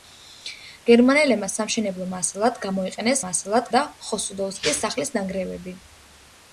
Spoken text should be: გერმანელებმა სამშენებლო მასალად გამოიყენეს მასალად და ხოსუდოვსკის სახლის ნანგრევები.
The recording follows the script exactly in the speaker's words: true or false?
true